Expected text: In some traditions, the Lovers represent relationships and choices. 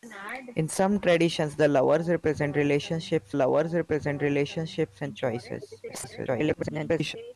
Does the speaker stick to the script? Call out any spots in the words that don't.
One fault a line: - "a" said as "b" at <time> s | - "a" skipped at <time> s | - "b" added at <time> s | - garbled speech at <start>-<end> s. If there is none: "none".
- "Lovers represent relationships" added at 3.3 s
- garbled speech at 5.9-7.2 s